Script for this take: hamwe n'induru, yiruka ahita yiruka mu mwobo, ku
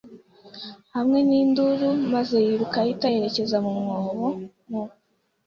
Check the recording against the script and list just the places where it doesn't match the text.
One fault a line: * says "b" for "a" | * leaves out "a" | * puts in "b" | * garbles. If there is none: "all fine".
* puts in "maze"
* says "yerekeza" for "yiruka"
* says "mu" for "ku"